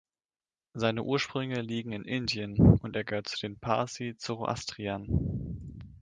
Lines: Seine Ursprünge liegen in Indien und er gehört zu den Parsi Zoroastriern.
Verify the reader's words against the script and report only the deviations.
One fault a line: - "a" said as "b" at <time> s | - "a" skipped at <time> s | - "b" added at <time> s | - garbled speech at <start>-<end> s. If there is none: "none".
none